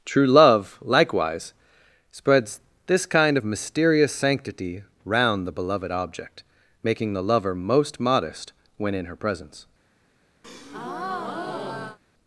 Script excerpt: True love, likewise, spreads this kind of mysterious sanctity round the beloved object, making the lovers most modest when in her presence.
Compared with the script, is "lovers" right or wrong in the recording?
wrong